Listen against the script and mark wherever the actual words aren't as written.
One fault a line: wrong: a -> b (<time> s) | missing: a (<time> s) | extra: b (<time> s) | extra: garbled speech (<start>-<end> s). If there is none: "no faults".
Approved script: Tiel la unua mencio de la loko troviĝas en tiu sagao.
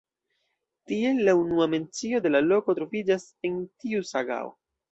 no faults